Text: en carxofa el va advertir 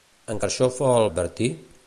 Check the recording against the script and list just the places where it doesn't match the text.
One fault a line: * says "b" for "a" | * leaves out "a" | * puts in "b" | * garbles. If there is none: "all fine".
* leaves out "va"